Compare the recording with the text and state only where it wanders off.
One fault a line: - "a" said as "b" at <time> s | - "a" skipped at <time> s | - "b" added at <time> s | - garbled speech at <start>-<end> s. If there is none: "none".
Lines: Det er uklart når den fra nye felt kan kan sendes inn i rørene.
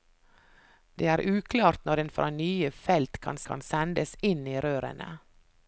none